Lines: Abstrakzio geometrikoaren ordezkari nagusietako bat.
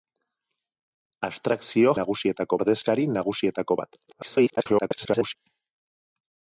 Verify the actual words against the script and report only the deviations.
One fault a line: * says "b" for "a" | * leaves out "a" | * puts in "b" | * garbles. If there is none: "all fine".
* says "nagusietako" for "geometrikoaren"
* garbles